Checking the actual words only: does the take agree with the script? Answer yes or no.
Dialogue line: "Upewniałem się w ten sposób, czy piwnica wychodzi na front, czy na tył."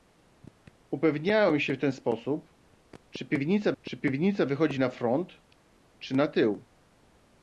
no